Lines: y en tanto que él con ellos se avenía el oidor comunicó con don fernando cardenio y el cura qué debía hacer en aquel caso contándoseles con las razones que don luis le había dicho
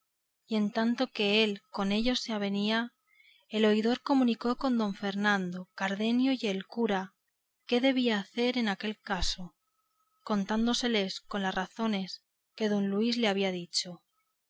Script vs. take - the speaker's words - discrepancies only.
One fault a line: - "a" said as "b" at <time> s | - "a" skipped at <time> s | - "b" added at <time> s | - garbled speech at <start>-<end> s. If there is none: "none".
none